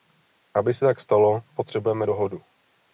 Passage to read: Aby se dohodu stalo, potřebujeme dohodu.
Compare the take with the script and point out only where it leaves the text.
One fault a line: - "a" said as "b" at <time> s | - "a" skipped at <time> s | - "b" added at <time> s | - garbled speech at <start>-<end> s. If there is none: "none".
- "dohodu" said as "tak" at 0.8 s